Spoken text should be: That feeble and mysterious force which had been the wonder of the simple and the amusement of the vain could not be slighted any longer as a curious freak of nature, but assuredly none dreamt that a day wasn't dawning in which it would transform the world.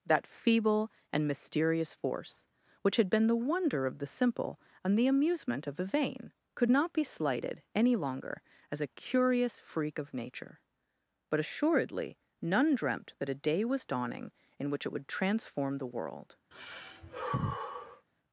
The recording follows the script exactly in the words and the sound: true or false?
false